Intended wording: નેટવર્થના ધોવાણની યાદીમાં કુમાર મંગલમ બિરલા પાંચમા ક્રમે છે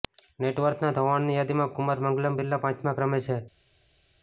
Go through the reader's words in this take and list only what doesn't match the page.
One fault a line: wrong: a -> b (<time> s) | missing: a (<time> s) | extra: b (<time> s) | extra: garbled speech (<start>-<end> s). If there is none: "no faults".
no faults